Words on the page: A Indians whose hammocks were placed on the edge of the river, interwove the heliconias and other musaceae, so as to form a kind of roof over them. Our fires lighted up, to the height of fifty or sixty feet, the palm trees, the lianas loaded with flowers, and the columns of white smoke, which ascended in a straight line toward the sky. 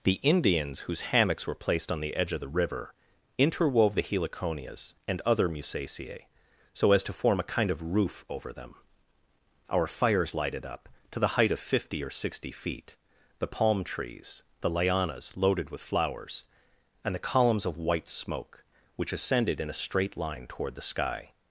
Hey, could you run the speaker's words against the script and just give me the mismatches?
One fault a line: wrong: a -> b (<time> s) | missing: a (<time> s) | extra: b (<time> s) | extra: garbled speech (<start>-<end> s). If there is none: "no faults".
wrong: A -> The (0.0 s)